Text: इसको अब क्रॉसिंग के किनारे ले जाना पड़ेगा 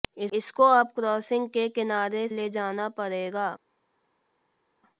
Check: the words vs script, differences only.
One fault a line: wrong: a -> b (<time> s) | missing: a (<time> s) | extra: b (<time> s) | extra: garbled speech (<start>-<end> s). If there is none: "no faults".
no faults